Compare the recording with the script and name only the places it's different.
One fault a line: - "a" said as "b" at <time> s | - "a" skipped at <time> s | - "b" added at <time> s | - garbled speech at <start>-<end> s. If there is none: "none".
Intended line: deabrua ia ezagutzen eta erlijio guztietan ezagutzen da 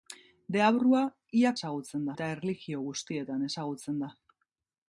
none